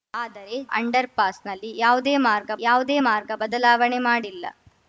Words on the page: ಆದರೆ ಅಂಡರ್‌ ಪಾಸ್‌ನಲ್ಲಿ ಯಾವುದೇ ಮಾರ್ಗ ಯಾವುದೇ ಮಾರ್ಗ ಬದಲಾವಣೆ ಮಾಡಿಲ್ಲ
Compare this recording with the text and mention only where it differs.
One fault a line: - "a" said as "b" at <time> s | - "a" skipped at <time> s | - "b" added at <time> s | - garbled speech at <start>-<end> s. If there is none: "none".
none